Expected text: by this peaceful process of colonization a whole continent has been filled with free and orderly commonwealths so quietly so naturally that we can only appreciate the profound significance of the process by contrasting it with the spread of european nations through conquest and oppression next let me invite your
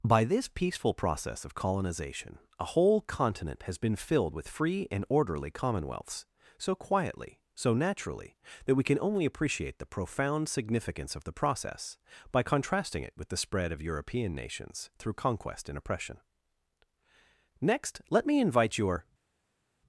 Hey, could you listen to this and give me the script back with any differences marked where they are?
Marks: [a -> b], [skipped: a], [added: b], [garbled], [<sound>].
by this peaceful process of colonization a whole continent has been filled with free and orderly commonwealths so quietly so naturally that we can only appreciate the profound significance of the process by contrasting it with the spread of european nations through conquest and oppression next let me invite your